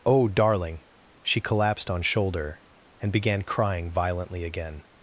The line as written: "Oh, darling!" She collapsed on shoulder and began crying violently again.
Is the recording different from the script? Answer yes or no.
no